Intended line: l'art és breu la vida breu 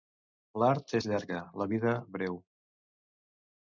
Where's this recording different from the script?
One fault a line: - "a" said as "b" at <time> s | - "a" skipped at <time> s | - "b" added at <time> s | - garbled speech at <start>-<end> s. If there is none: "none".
- "breu" said as "llarga" at 1.1 s